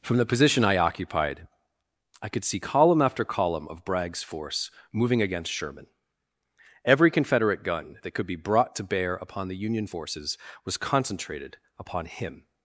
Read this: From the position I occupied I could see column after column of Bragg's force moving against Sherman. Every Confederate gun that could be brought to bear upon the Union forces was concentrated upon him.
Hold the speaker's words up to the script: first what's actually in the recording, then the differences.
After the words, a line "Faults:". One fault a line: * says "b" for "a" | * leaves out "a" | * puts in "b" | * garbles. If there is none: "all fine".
From the position I occupied I could see column after column of Bragg's force moving against Sherman. Every Confederate gun that could be brought to bear upon the Union forces was concentrated upon him.
Faults:
all fine